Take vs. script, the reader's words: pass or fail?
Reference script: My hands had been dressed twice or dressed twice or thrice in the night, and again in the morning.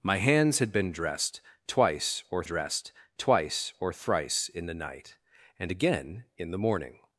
pass